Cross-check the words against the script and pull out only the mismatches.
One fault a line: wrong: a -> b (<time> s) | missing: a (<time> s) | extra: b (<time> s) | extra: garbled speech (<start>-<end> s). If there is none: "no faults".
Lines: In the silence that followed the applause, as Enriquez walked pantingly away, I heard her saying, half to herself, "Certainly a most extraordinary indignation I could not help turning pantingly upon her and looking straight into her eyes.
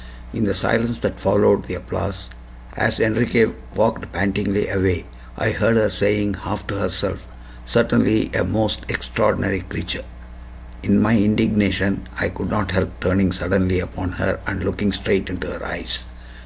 extra: creature In my (9.6 s)
wrong: pantingly -> suddenly (13.3 s)